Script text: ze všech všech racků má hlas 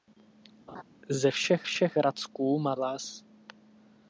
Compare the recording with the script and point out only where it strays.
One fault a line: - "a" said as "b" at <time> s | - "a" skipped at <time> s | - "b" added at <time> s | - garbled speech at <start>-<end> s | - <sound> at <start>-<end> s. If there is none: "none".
- laugh at 0.7-0.8 s